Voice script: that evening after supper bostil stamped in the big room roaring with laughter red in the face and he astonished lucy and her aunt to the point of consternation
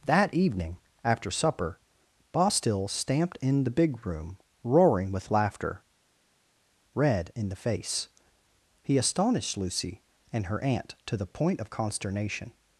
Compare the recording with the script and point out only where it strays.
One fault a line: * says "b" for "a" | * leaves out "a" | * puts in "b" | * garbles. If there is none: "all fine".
* leaves out "and"